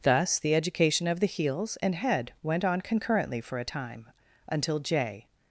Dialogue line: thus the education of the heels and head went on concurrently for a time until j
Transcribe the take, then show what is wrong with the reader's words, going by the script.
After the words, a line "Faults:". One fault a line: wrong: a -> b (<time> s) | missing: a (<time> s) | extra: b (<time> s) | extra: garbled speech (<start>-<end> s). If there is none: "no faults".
thus the education of the heels and head went on concurrently for a time until j
Faults:
no faults